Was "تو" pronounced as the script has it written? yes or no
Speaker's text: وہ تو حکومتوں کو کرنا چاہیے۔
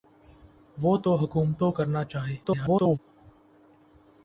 yes